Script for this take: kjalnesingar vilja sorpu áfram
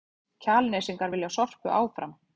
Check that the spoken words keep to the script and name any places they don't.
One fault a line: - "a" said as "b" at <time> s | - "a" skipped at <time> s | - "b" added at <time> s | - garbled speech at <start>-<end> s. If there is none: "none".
none